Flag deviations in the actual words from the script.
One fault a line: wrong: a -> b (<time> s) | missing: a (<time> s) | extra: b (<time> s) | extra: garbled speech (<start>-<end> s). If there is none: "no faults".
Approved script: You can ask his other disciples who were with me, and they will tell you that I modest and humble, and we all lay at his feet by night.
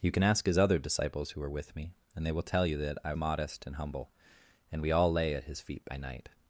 no faults